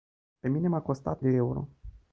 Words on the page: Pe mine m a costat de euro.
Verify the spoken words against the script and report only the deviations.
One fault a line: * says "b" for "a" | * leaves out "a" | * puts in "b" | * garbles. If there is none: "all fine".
all fine